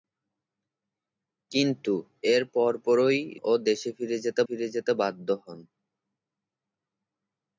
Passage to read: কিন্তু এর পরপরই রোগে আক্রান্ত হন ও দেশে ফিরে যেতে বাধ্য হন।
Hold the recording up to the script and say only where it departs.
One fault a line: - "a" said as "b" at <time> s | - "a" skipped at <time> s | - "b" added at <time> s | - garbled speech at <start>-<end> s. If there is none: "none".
- "রোগে আক্রান্ত হন ও দেশে" said as "ও দেশে ফিরে যেতে" at 3.4 s